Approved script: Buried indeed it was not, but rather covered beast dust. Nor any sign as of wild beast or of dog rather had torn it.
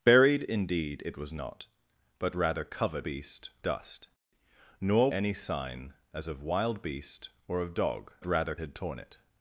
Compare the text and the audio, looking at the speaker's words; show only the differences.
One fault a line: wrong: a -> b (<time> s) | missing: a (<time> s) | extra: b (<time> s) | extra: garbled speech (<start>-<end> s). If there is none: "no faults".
no faults